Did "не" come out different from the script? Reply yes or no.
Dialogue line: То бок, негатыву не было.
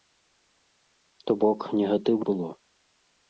yes